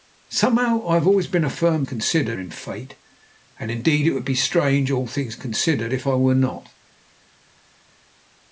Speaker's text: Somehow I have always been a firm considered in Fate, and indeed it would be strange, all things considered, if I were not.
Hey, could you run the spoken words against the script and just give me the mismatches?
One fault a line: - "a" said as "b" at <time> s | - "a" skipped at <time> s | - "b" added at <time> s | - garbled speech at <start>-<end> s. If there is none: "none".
none